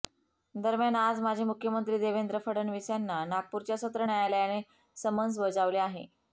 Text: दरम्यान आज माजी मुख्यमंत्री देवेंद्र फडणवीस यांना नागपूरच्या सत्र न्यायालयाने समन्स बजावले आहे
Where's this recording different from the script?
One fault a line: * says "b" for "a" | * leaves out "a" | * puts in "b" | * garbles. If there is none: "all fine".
all fine